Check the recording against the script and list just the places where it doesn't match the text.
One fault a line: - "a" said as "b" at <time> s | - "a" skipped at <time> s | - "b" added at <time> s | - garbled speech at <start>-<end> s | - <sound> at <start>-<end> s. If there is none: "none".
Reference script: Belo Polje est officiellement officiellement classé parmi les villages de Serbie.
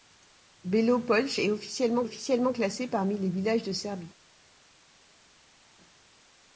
none